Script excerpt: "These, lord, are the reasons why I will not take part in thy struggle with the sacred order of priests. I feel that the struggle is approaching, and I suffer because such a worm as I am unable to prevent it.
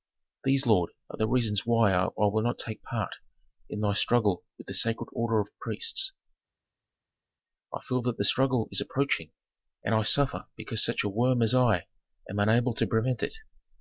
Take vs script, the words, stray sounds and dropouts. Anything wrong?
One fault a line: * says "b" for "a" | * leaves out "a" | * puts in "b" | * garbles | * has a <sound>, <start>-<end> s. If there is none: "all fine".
all fine